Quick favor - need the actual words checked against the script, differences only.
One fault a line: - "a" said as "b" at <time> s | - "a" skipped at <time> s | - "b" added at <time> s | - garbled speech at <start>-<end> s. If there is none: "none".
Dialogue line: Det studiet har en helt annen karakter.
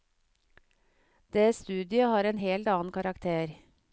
none